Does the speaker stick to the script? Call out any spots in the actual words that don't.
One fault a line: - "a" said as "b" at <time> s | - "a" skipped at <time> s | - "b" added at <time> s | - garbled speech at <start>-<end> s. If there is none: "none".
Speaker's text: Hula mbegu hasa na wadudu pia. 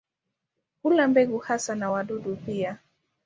none